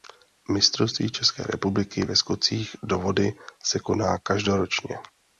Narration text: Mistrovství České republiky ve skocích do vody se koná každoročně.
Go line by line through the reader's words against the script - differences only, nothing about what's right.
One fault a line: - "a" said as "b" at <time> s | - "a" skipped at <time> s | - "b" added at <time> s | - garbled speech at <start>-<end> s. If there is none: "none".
none